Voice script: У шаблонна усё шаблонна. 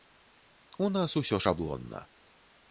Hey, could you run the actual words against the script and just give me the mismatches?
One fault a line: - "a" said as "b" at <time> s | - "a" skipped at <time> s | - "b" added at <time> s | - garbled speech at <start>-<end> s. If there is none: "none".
- "шаблонна" said as "нас" at 0.9 s